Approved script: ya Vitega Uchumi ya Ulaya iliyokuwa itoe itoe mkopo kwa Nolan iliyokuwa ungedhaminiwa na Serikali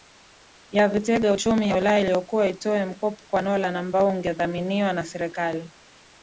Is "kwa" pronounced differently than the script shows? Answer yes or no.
no